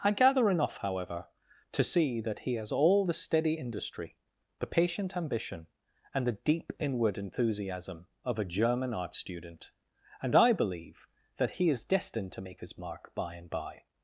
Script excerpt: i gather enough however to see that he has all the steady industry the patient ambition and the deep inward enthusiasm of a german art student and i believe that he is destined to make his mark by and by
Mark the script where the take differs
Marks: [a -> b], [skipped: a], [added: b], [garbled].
i gather enough however to see that he has all the steady industry the patient ambition and the deep inward enthusiasm of a german art student and i believe that he is destined to make his mark by and by